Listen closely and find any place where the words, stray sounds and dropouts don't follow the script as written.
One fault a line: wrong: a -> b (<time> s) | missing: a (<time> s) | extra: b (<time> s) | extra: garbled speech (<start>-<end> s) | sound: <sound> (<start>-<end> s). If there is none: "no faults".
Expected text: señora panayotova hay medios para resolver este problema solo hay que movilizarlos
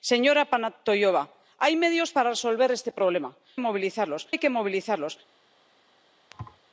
wrong: solo -> movilizarlos (3.6 s)
sound: thud (6.3-6.6 s)